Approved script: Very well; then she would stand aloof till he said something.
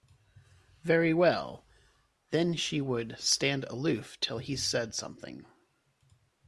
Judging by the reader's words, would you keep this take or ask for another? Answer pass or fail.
pass